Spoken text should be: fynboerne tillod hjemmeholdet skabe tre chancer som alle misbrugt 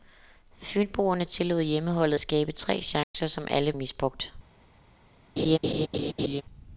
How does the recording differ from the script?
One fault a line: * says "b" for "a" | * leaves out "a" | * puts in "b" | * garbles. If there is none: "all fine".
all fine